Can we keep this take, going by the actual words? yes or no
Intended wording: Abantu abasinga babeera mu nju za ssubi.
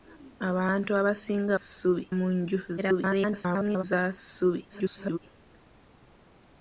no